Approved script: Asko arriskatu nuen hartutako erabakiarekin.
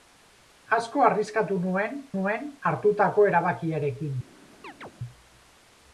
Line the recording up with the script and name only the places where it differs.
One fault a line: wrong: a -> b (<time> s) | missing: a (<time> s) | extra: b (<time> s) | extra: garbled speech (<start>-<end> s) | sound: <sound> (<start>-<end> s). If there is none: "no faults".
extra: nuen (2.2 s)
sound: chirp (4.6-4.9 s)